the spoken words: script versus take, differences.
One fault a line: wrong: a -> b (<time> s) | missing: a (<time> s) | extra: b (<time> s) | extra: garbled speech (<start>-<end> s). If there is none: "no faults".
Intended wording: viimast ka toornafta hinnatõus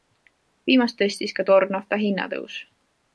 extra: tõstis (1.0 s)